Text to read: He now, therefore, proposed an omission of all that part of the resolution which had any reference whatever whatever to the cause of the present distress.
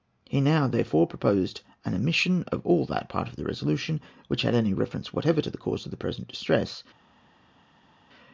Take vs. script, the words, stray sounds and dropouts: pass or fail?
fail